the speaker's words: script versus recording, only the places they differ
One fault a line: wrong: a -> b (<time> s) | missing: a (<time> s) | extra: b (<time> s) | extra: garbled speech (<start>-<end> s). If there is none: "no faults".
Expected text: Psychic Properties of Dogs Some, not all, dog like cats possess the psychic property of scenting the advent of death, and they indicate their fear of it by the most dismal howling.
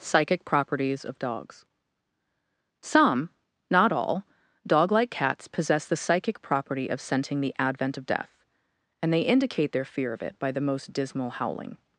no faults